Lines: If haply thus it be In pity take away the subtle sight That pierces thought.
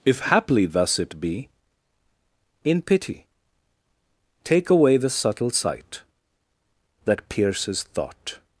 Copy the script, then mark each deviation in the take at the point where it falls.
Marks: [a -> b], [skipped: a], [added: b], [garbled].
If haply thus it be In pity take away the subtle sight That pierces thought.